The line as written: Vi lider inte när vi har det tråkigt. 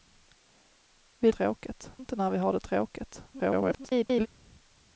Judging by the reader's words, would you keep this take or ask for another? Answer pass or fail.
fail